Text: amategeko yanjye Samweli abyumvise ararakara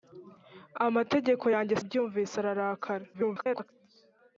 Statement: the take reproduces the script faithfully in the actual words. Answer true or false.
false